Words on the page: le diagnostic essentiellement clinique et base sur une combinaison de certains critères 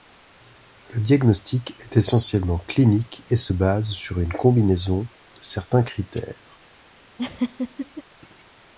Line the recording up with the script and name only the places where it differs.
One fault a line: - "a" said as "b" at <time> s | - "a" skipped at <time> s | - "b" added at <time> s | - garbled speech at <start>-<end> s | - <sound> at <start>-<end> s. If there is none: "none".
- "est" added at 1.8 s
- "se" added at 3.3 s
- laugh at 7.2-8.0 s